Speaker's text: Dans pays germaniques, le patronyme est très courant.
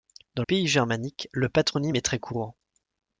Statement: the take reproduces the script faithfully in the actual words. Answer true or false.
true